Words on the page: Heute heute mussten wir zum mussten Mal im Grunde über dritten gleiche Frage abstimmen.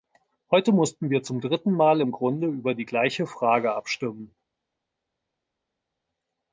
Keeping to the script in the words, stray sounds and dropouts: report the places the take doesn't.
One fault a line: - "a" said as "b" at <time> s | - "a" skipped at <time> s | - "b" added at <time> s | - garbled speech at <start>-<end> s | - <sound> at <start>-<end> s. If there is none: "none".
- "heute" skipped at 0.7 s
- "mussten" said as "dritten" at 1.4 s
- "dritten" said as "die" at 2.7 s